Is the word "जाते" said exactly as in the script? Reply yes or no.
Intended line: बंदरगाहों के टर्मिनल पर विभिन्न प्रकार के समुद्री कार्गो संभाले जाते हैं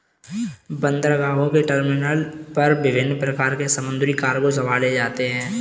yes